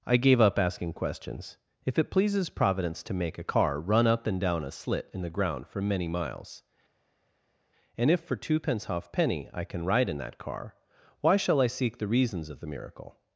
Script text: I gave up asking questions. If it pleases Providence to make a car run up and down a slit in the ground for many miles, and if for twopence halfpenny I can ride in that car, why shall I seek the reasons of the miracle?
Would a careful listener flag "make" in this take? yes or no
no